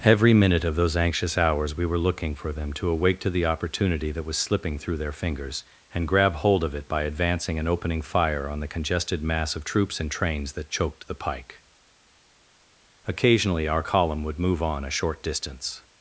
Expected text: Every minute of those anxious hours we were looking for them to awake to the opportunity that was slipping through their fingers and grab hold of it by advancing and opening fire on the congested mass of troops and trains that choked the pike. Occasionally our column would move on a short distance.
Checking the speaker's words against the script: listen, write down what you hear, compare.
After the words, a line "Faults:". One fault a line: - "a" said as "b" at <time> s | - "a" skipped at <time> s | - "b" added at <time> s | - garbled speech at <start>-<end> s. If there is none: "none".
Every minute of those anxious hours we were looking for them to awake to the opportunity that was slipping through their fingers and grab hold of it by advancing and opening fire on the congested mass of troops and trains that choked the pike. Occasionally our column would move on a short distance.
Faults:
none